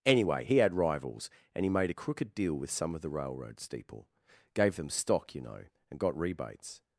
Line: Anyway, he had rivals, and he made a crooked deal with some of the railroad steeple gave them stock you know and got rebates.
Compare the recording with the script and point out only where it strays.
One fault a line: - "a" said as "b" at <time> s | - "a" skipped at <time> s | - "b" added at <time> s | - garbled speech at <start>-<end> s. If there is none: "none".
none